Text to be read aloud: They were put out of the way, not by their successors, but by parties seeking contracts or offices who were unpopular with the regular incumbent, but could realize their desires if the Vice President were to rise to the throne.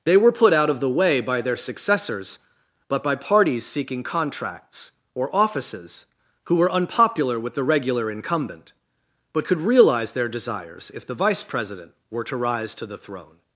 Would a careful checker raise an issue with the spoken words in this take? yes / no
yes